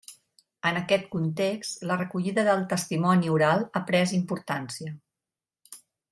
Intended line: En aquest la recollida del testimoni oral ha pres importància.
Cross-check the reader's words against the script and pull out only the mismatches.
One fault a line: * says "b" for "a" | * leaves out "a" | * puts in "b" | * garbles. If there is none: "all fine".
* puts in "context"